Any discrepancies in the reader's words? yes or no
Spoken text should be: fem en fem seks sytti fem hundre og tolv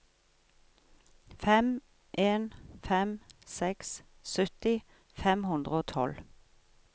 no